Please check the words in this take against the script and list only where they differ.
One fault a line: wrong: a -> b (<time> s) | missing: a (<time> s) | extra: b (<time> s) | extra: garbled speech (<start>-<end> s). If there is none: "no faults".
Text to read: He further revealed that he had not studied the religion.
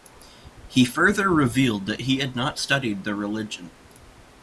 no faults